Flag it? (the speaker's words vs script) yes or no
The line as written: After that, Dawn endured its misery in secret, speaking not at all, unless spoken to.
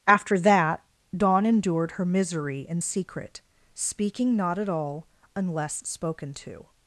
yes